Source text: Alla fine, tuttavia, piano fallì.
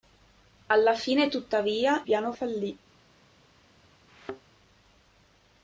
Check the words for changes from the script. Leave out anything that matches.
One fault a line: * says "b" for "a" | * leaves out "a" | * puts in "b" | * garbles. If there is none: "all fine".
all fine